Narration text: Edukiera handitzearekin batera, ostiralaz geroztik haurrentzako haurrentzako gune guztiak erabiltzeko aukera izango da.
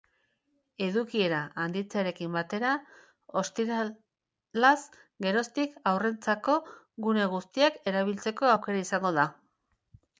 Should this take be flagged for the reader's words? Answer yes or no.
yes